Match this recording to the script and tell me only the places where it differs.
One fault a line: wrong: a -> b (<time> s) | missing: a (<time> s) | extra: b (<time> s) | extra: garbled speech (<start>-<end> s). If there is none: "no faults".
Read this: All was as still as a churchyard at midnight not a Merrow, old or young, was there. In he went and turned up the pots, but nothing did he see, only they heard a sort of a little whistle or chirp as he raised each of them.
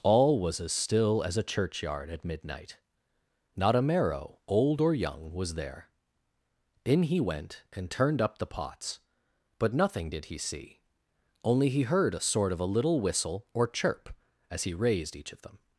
wrong: they -> he (11.7 s)